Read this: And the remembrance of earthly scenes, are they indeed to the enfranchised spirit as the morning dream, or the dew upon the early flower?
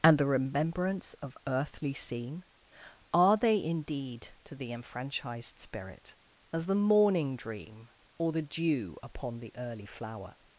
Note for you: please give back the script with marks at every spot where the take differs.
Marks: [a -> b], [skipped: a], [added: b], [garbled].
And the remembrance of earthly [scenes, -> scene] are they indeed to the enfranchised spirit as the morning dream, or the dew upon the early flower?